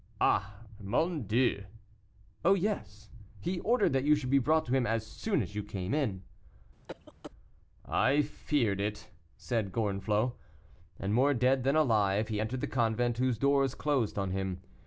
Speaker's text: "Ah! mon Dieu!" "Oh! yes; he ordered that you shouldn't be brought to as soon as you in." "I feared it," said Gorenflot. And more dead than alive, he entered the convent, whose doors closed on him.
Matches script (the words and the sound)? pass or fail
fail